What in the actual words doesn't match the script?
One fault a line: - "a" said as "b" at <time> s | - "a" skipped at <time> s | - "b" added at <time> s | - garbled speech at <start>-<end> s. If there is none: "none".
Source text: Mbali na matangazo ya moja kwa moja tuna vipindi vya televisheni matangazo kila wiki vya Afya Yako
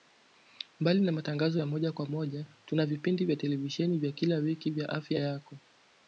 - "matangazo" said as "vya" at 4.0 s